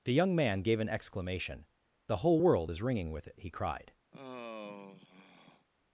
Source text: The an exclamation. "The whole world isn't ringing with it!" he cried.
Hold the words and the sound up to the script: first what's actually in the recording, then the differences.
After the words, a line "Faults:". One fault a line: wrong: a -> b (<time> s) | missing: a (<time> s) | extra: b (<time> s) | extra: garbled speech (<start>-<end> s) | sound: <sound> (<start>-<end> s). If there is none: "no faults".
The young man gave an exclamation. "The whole world is ringing with it!" he cried.
Faults:
extra: young man gave (0.1 s)
wrong: isn't -> is (2.7 s)
sound: sigh (4.1-5.7 s)